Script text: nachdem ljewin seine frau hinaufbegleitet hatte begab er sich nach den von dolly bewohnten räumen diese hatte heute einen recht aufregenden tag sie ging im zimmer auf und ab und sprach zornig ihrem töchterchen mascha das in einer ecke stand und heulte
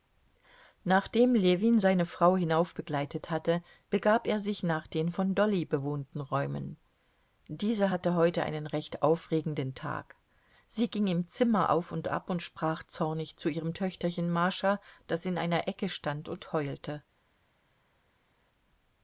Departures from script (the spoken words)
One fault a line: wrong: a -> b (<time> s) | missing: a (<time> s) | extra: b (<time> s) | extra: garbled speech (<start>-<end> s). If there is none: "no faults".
extra: zu (13.3 s)